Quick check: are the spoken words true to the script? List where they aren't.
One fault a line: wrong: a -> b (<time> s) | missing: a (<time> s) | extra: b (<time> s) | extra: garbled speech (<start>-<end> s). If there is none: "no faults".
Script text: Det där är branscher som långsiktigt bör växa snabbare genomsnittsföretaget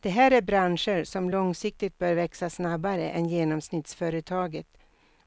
wrong: där -> här (0.1 s)
extra: än (3.1 s)